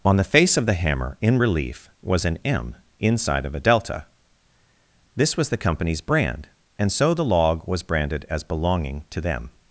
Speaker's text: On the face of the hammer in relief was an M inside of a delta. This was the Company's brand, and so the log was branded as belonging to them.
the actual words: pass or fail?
pass